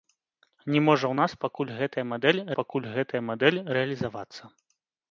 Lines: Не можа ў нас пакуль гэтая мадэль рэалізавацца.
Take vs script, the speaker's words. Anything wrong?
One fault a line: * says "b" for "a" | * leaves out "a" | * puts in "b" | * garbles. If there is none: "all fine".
* puts in "пакуль гэтая мадэль"